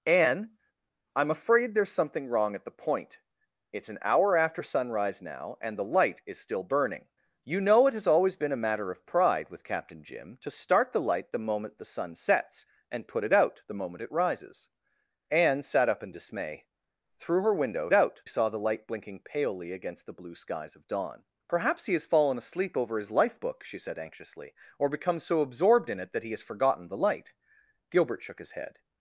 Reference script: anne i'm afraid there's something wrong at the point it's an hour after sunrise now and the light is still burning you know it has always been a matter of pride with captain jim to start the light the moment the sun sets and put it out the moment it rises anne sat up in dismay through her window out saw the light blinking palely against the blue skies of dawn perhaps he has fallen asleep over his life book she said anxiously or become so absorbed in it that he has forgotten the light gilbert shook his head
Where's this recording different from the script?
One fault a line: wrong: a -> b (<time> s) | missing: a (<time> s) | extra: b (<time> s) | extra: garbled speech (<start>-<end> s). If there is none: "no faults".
no faults